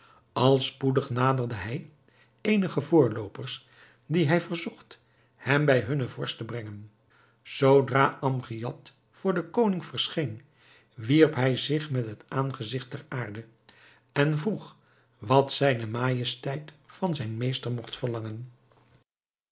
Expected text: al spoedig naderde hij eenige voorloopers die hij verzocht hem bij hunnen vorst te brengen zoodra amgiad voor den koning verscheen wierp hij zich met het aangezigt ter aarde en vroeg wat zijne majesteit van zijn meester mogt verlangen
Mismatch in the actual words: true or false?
false